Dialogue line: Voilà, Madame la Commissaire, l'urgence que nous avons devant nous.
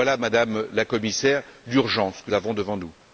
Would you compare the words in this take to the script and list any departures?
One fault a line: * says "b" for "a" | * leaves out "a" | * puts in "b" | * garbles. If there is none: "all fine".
* leaves out "nous"